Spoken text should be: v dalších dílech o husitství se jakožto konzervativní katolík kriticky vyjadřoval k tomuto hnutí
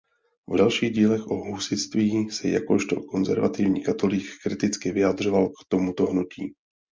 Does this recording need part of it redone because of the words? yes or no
no